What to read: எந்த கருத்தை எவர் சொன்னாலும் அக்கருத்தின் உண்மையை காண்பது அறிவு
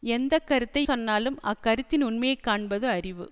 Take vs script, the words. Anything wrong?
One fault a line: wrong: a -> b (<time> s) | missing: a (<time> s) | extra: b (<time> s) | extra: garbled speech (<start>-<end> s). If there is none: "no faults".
missing: எவர் (0.8 s)